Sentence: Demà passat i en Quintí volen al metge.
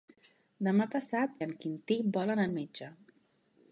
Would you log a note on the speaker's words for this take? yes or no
no